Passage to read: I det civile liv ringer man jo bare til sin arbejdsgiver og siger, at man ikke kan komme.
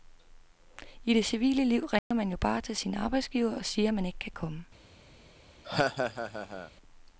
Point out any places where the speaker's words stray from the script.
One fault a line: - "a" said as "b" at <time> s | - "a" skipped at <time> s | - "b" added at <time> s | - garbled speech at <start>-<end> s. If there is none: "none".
none